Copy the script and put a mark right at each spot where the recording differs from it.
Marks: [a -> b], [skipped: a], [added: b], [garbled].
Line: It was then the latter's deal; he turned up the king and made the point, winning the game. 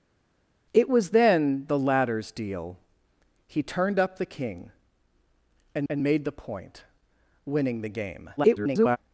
It was then the latter's deal; he turned up the king and [added: and] made the point, winning the game. [garbled]